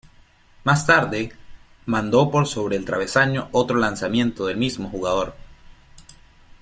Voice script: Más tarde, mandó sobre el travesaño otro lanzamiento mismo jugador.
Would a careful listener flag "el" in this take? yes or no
no